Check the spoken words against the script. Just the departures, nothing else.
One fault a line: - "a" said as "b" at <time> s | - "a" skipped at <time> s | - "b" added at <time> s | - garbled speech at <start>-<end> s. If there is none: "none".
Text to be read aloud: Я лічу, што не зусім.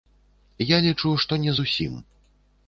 none